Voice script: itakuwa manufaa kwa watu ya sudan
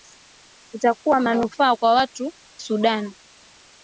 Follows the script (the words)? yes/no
no